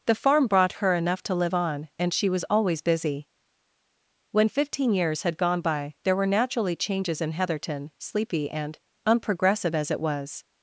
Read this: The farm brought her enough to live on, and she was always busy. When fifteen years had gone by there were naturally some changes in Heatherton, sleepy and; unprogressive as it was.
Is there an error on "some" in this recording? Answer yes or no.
yes